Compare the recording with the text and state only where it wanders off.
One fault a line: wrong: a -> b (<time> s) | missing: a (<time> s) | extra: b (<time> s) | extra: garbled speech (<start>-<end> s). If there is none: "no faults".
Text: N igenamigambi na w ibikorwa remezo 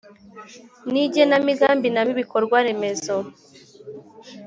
no faults